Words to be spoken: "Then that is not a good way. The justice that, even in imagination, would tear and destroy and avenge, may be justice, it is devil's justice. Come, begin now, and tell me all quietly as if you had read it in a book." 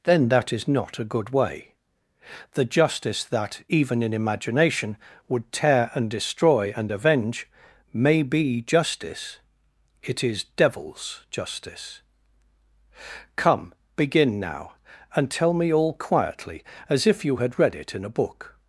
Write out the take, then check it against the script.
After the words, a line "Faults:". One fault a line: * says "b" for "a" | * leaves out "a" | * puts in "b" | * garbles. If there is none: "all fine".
"Then that is not a good way. The justice that, even in imagination, would tear and destroy and avenge, may be justice, it is devil's justice. Come, begin now, and tell me all quietly as if you had read it in a book."
Faults:
all fine